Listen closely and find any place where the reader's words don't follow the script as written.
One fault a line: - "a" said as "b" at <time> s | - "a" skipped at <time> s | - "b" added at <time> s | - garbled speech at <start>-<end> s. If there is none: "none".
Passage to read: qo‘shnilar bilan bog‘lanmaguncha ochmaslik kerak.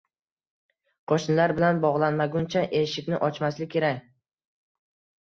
- "eshikni" added at 2.8 s